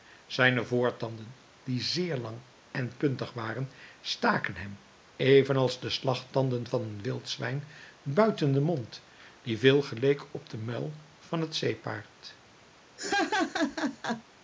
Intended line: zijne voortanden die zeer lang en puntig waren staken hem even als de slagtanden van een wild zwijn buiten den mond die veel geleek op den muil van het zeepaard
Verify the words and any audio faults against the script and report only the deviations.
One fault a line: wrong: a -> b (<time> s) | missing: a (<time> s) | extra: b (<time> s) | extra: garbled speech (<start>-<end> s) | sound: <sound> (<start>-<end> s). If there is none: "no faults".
sound: laugh (13.0-14.2 s)